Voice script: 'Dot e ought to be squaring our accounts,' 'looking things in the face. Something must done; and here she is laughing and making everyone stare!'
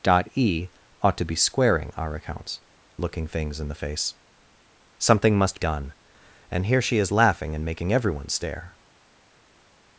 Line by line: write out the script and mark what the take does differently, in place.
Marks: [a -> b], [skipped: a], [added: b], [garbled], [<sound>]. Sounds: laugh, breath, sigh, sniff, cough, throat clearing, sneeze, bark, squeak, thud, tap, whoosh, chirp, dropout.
'Dot e ought to be squaring our accounts,' 'looking things in the face. Something must done; and here she is laughing and making everyone stare!'